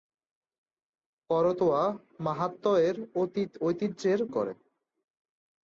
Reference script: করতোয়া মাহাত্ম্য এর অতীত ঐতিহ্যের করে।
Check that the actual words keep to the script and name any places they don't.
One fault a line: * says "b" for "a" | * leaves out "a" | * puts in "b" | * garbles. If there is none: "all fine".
all fine